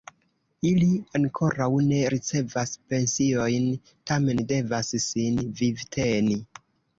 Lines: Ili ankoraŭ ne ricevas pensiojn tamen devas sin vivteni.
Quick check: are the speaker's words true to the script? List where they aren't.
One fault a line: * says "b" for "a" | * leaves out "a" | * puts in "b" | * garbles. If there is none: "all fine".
all fine